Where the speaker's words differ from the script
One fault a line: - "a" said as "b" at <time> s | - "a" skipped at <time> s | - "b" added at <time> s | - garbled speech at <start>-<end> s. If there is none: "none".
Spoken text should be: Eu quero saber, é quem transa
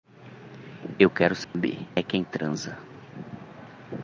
none